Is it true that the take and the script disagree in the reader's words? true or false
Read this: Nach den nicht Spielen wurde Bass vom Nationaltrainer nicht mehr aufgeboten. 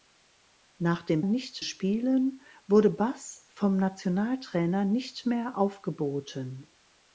false